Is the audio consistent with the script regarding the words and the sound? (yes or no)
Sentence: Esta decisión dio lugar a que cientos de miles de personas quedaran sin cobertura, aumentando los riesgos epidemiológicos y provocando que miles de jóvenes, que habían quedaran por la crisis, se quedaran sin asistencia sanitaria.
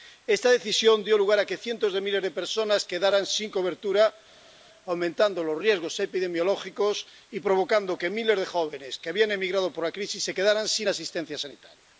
no